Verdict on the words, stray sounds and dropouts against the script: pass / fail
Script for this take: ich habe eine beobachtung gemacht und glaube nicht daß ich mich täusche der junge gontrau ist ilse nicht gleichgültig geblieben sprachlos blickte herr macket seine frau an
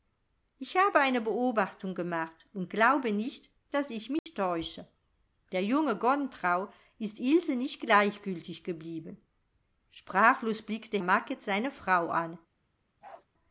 fail